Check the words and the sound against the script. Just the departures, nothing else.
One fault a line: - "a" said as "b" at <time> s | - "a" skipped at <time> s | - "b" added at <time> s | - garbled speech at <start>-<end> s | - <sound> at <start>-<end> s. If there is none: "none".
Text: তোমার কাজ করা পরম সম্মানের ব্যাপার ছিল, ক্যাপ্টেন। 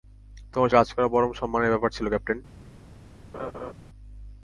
- laugh at 3.3-3.7 s